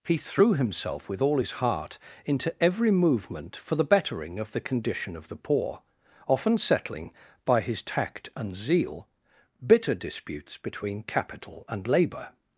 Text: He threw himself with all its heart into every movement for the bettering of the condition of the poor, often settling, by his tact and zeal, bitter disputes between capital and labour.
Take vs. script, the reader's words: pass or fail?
fail